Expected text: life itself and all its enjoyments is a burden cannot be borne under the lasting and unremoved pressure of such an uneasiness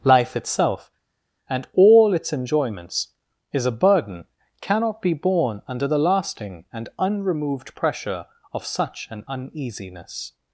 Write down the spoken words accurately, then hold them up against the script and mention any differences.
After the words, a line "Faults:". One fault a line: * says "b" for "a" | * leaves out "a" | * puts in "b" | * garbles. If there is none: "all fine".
life itself and all its enjoyments is a burden cannot be borne under the lasting and unremoved pressure of such an uneasiness
Faults:
all fine